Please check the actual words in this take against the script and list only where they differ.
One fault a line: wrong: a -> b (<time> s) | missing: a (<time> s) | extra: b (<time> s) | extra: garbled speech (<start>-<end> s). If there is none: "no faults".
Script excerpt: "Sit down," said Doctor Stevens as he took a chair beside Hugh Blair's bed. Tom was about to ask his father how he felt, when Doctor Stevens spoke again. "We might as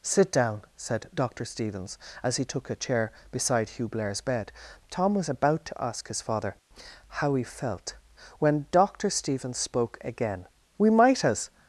no faults